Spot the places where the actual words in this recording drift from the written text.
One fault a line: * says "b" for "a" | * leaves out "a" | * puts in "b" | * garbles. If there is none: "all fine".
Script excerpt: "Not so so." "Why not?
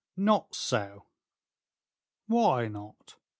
* leaves out "so"